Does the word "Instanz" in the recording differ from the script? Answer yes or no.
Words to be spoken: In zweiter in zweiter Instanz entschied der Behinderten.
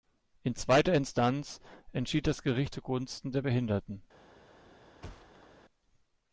yes